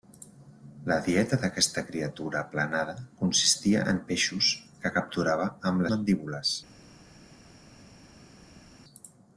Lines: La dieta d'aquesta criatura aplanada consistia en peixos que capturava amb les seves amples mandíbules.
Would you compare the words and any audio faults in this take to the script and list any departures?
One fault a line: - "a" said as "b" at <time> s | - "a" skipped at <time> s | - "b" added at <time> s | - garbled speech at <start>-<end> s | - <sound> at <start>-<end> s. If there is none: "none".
- "les seves amples" skipped at 5.9 s